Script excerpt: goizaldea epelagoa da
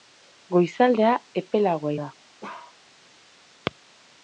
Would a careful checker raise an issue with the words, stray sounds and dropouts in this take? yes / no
yes